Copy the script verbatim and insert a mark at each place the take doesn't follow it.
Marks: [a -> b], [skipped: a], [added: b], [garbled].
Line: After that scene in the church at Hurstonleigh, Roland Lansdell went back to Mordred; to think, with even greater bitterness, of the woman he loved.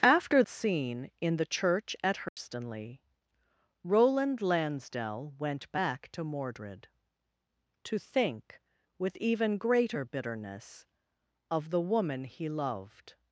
After [skipped: that] scene in the church at Hurstonleigh, Roland Lansdell went back to Mordred; to think, with even greater bitterness, of the woman he loved.